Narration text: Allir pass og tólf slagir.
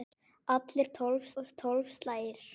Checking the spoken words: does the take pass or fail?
fail